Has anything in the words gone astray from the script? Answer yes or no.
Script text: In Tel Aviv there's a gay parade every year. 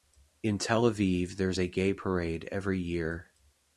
no